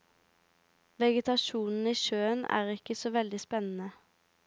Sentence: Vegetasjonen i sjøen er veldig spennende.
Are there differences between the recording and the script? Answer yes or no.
yes